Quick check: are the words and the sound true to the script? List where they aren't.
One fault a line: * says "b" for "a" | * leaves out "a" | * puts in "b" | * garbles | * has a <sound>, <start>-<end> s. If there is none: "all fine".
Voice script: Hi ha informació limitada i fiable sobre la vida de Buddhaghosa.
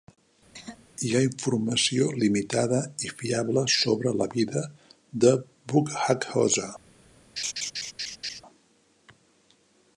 * has a throat clearing, 0.5-0.9 s
* has a laugh, 7.4-8.4 s